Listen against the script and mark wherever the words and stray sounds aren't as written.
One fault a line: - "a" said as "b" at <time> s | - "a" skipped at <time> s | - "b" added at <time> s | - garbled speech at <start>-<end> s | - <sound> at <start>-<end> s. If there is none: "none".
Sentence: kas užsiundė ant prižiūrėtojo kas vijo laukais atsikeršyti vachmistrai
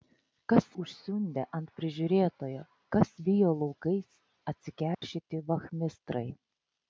- dropout at 4.9-5.0 s